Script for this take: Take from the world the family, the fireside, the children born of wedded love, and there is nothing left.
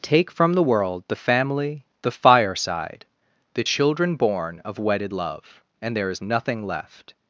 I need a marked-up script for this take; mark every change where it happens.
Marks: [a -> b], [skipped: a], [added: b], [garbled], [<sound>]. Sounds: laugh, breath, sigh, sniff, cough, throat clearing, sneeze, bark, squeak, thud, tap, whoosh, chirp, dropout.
Take from the world the family, the fireside, the children born of wedded love, and there is nothing left.